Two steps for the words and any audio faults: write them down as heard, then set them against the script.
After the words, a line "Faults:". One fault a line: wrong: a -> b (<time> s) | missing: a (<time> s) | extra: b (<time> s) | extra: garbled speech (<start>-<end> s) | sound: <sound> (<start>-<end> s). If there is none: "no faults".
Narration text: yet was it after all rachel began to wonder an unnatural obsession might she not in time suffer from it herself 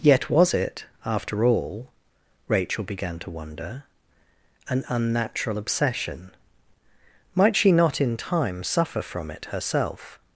yet was it after all rachel began to wonder an unnatural obsession might she not in time suffer from it herself
Faults:
no faults